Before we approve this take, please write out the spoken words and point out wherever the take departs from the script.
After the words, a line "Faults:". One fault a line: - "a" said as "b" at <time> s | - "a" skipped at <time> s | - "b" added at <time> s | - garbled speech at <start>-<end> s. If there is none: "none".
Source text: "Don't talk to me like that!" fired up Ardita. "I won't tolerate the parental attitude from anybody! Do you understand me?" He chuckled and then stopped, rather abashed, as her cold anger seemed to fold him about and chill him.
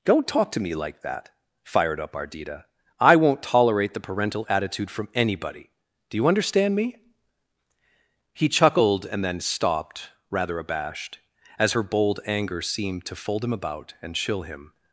"Don't talk to me like that!" fired up Ardita. "I won't tolerate the parental attitude from anybody! Do you understand me?" He chuckled and then stopped, rather abashed, as her bold anger seemed to fold him about and chill him.
Faults:
- "cold" said as "bold" at 11.8 s